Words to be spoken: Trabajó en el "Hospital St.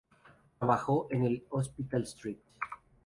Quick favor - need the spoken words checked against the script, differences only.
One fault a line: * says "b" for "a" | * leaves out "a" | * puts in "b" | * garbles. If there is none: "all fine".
all fine